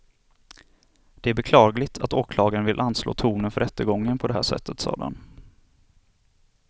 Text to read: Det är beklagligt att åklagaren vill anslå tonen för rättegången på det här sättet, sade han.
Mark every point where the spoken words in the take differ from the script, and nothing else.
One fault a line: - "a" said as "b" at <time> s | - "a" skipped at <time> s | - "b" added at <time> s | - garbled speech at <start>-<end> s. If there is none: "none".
none